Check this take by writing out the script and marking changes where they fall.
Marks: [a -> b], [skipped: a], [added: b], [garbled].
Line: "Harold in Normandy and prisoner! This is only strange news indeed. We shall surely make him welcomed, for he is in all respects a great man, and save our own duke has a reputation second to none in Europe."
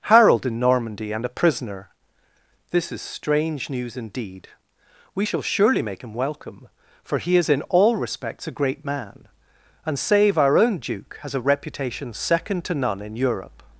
"Harold in Normandy and [added: a] prisoner! This is [skipped: only] strange news indeed. We shall surely make him [welcomed, -> welcome] for he is in all respects a great man, and save our own duke has a reputation second to none in Europe."